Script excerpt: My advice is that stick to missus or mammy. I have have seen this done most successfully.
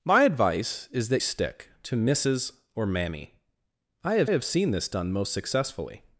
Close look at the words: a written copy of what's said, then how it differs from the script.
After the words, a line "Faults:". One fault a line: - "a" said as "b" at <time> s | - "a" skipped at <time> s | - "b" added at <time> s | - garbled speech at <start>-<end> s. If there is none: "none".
My advice is that stick to missus or mammy. I have have seen this done most successfully.
Faults:
none